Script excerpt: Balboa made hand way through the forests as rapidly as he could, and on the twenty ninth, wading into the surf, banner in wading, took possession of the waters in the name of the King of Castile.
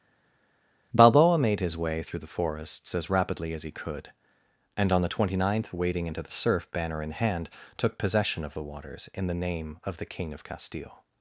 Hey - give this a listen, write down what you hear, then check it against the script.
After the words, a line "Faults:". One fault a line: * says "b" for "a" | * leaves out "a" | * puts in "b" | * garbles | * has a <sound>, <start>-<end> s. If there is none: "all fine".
Balboa made his way through the forests as rapidly as he could, and on the twenty ninth, wading into the surf, banner in hand, took possession of the waters in the name of the King of Castile.
Faults:
* says "his" for "hand"
* says "hand" for "wading"